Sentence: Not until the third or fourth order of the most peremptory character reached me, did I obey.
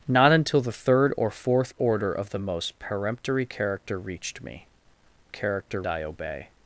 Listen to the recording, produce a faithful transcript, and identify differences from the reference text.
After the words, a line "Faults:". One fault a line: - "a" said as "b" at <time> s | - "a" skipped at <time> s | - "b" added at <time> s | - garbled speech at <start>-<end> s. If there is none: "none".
Not until the third or fourth order of the most peremptory character reached me, character I obey.
Faults:
- "did" said as "character" at 5.3 s